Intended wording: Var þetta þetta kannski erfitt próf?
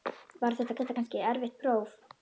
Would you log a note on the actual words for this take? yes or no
no